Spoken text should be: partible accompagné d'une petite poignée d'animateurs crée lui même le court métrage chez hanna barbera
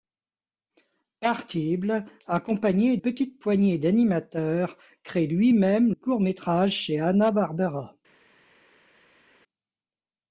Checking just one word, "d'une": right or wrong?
wrong